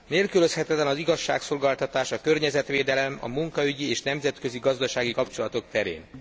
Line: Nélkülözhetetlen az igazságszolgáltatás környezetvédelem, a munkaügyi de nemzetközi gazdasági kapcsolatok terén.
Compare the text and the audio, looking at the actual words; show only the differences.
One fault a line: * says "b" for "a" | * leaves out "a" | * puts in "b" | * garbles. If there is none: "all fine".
* puts in "a"
* says "és" for "de"